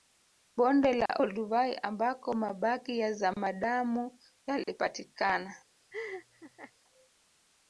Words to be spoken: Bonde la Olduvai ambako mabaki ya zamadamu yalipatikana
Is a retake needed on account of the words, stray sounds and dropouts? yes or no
yes